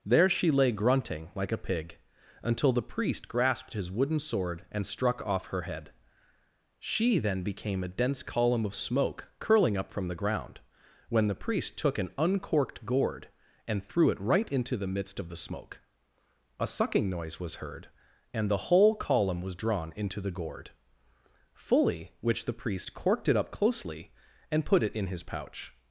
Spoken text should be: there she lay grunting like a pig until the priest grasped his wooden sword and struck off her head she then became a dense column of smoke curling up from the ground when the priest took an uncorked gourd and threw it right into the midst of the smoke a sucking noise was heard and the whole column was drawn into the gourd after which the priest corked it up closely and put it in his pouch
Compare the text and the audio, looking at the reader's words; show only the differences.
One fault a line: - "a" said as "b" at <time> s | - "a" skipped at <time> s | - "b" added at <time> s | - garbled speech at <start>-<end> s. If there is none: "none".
- "after" said as "fully" at 21.5 s